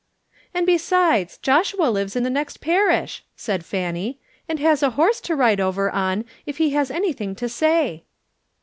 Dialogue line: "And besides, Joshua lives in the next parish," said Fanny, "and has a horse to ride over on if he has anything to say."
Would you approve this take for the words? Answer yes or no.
yes